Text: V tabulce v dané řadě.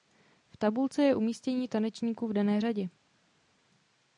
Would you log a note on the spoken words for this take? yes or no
yes